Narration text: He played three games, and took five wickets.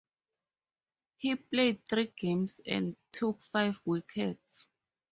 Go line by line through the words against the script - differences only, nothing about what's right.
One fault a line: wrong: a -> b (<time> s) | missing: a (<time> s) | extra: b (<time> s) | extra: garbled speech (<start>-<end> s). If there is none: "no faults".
no faults